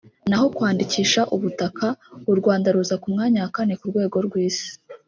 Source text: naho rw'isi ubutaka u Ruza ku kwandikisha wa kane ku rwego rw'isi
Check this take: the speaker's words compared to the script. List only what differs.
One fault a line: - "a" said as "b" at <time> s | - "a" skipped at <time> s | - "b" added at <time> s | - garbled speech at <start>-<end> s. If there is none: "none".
- "rw'isi" said as "kwandikisha" at 0.6 s
- "Rwanda" added at 2.4 s
- "kwandikisha" said as "mwanya" at 3.1 s